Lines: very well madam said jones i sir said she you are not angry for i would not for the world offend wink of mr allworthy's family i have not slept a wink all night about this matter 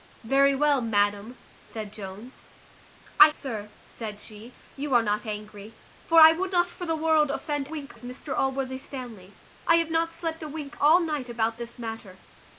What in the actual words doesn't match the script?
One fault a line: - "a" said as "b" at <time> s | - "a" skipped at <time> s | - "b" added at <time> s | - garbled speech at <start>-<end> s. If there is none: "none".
none